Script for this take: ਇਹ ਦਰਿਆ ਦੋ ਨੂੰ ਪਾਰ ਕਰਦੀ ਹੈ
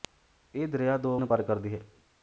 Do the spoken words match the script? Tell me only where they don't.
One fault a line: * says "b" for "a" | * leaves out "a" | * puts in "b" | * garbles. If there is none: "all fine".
all fine